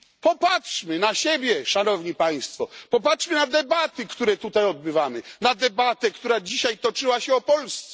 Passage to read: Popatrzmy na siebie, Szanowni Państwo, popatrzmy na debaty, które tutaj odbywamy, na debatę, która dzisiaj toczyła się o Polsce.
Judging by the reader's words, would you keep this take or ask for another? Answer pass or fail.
pass